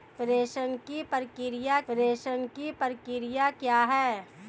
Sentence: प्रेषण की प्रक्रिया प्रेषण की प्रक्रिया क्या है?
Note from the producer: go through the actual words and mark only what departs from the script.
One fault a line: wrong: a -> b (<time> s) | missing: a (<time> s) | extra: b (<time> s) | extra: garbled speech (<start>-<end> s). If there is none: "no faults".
no faults